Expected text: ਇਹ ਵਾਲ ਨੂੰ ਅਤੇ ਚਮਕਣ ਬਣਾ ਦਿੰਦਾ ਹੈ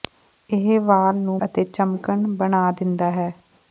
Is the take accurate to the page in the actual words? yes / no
yes